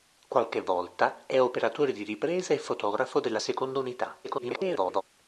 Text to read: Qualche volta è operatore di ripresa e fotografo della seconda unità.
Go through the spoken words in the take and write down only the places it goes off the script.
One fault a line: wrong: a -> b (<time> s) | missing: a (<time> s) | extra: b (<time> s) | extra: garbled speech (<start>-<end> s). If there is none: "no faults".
extra: garbled speech (4.2-5.0 s)